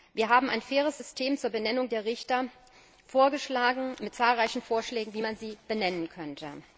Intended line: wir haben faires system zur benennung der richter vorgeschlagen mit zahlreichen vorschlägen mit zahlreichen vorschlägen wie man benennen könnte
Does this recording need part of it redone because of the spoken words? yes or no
yes